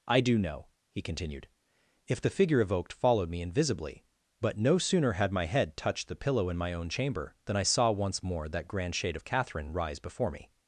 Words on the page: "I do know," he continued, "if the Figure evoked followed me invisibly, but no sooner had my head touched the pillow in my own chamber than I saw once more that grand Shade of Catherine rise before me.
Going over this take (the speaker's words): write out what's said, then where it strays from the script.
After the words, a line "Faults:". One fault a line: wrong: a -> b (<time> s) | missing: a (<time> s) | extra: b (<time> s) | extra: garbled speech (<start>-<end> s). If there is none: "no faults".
"I do know," he continued, "if the Figure evoked followed me invisibly, but no sooner had my head touched the pillow in my own chamber than I saw once more that grand Shade of Catherine rise before me.
Faults:
no faults